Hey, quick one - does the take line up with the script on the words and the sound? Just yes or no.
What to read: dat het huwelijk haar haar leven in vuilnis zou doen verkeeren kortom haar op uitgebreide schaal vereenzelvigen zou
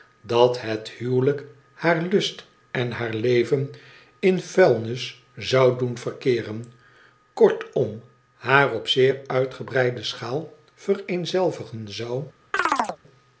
no